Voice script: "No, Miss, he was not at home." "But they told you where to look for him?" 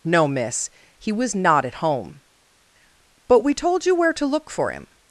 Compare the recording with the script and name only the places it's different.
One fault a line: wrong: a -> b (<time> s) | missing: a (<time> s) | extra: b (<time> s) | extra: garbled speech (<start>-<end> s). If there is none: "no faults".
wrong: they -> we (3.4 s)